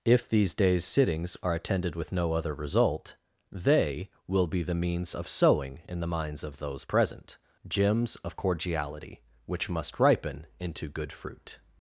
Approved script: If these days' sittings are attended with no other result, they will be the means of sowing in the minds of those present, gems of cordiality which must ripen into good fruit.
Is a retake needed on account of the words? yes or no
no